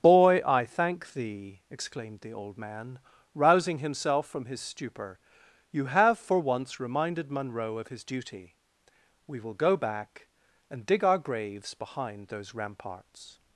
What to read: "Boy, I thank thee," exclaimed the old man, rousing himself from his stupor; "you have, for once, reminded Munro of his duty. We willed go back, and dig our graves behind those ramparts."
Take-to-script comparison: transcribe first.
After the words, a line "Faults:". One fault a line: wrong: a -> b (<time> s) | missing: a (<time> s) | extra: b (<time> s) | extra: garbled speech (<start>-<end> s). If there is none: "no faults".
"Boy, I thank thee," exclaimed the old man, rousing himself from his stupor; "you have, for once, reminded Munro of his duty. We will go back, and dig our graves behind those ramparts."
Faults:
wrong: willed -> will (9.4 s)